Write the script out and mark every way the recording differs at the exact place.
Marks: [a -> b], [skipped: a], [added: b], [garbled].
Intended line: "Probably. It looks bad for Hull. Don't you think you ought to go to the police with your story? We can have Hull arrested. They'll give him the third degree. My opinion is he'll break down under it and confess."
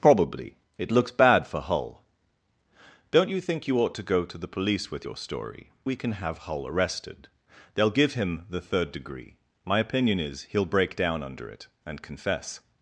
"Probably. It looks bad for Hull. Don't you think you ought to go to the police with your story? We can have Hull arrested. They'll give him the third degree. My opinion is he'll break down under it and confess."